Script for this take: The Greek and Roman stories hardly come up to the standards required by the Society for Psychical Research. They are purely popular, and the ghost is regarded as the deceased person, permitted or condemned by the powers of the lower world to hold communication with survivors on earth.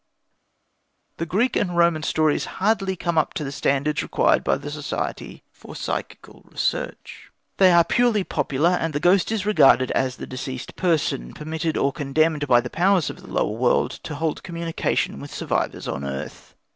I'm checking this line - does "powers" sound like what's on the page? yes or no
yes